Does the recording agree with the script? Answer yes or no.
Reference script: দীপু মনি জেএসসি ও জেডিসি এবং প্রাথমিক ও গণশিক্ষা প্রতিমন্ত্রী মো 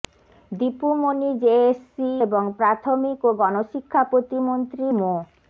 no